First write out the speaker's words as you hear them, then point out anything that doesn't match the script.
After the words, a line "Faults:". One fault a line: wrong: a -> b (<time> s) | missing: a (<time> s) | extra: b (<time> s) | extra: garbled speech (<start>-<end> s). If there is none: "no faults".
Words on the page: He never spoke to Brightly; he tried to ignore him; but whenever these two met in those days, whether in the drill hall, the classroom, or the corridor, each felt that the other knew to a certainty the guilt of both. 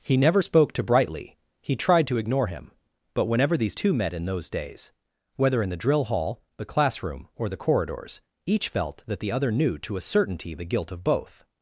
He never spoke to Brightly; he tried to ignore him; but whenever these two met in those days, whether in the drill hall, the classroom, or the corridors, each felt that the other knew to a certainty the guilt of both.
Faults:
wrong: corridor -> corridors (7.6 s)